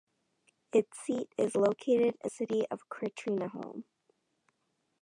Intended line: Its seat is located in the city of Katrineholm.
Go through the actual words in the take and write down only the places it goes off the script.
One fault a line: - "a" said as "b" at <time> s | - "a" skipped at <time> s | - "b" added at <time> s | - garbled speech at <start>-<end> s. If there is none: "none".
- "the" skipped at 2.3 s